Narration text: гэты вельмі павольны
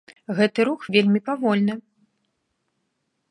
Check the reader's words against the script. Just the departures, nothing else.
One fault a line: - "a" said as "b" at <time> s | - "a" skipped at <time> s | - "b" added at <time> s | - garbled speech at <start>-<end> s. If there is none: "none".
- "рух" added at 0.7 s